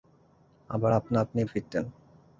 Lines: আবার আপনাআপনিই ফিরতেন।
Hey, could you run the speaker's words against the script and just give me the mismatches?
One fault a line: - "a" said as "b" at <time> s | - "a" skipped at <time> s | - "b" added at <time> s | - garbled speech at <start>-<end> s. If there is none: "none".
none